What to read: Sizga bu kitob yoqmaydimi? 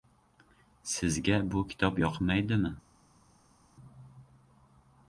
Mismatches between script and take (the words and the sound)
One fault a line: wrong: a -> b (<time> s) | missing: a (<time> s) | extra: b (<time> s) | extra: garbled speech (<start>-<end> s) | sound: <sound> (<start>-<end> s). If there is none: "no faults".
no faults